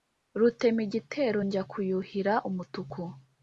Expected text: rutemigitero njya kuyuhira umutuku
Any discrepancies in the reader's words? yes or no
no